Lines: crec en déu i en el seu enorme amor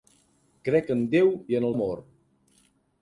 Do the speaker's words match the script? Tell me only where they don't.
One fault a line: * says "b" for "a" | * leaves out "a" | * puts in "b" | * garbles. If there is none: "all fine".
* leaves out "seu enorme"